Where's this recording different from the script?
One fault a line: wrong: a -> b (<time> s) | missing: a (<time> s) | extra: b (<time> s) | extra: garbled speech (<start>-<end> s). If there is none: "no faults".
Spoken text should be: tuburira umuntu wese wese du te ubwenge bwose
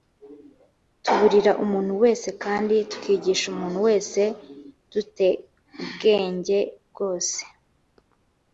extra: kandi tukigisha umuntu (2.4 s)